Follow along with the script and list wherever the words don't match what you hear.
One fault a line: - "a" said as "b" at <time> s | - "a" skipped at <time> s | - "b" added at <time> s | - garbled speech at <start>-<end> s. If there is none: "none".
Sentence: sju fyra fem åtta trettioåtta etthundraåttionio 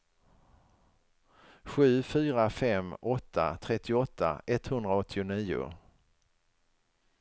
none